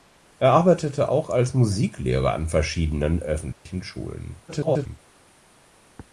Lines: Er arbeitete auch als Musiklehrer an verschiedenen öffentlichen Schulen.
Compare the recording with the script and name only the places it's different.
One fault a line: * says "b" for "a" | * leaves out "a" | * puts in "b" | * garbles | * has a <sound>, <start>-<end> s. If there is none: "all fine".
* has a dropout, 3.5-3.7 s
* garbles